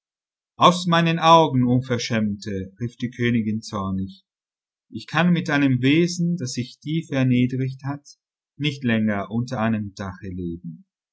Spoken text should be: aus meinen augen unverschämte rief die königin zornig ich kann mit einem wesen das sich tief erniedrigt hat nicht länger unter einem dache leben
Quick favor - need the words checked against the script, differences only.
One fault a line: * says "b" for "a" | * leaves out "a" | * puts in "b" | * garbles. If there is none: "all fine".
all fine